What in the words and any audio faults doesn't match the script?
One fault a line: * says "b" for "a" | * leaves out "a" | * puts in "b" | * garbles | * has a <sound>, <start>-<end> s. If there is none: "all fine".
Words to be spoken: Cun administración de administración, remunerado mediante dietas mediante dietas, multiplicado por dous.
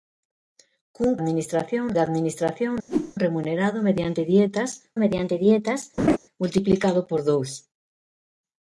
* has a whoosh, 2.9-3.1 s
* has a laugh, 6.0-6.2 s